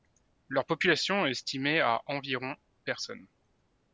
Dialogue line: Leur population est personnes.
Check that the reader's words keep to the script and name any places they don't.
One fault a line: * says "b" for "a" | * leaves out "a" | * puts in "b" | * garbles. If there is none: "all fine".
* puts in "estimée à environ"